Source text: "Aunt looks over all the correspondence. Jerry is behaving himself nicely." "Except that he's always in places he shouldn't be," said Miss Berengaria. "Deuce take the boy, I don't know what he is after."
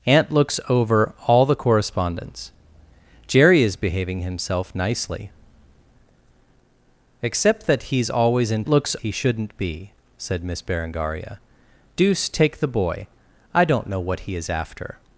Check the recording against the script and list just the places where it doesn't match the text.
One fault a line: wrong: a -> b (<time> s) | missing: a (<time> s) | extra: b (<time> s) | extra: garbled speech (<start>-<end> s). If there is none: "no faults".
wrong: places -> looks (8.7 s)